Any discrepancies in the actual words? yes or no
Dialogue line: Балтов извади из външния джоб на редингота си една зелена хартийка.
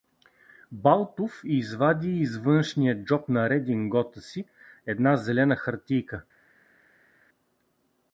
no